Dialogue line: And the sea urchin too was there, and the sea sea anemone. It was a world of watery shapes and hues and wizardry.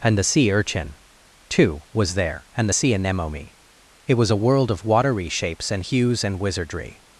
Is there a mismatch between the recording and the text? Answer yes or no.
yes